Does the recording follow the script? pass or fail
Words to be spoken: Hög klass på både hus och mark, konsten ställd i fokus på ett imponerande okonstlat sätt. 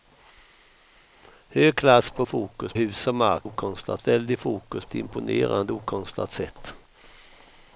fail